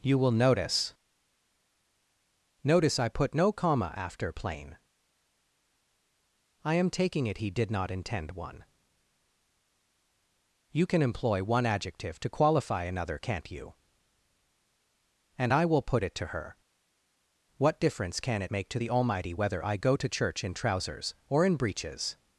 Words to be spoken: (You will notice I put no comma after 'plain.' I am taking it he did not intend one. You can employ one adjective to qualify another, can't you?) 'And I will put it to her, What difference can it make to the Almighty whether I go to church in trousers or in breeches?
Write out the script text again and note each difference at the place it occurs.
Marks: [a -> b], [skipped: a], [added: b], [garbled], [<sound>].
(You will notice [added: notice] I put no comma after 'plain.' I am taking it he did not intend one. You can employ one adjective to qualify another, can't you?) 'And I will put it to her, What difference can it make to the Almighty whether I go to church in trousers or in breeches?